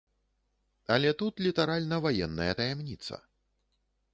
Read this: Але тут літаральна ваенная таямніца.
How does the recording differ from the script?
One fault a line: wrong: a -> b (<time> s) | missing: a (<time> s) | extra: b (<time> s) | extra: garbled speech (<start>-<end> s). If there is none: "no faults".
no faults